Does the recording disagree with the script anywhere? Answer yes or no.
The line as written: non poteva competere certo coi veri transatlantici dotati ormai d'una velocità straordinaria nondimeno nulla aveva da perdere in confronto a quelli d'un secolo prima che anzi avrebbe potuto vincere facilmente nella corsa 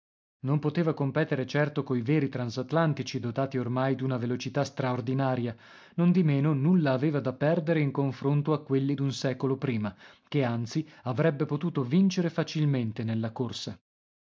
no